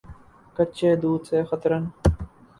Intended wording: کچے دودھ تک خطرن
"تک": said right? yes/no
no